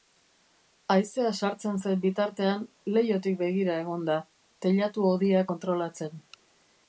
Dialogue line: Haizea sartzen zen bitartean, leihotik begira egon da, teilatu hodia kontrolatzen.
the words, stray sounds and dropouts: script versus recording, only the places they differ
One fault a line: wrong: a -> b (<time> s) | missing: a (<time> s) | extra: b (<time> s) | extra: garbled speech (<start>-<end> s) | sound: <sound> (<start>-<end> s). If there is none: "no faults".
no faults